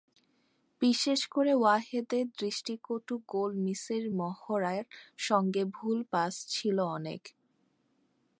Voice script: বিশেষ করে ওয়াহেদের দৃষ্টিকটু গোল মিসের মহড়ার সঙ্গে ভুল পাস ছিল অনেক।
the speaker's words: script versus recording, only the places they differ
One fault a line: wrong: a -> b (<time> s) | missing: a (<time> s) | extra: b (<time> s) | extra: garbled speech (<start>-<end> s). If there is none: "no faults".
no faults